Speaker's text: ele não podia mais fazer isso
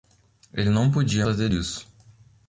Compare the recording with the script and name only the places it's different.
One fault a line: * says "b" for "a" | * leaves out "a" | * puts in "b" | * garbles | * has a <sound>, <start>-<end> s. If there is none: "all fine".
* leaves out "mais"